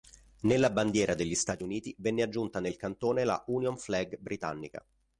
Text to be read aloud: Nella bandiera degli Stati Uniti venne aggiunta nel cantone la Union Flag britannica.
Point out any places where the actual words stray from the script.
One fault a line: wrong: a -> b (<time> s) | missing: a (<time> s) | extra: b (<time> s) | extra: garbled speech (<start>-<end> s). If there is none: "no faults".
no faults